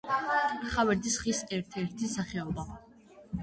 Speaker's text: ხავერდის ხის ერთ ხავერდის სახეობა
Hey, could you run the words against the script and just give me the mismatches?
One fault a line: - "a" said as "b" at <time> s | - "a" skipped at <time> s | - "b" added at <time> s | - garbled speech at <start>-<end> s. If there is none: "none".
- "ხავერდის" said as "ერთი" at 1.8 s